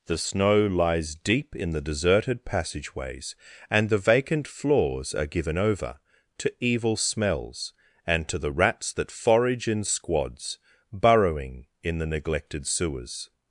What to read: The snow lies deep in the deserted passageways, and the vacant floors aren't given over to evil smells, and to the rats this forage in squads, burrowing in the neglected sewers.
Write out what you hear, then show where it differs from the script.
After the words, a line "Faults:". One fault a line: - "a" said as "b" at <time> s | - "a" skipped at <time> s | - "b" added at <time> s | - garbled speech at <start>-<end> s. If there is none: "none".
The snow lies deep in the deserted passageways, and the vacant floors are given over to evil smells, and to the rats that forage in squads, burrowing in the neglected sewers.
Faults:
- "aren't" said as "are" at 5.1 s
- "this" said as "that" at 8.9 s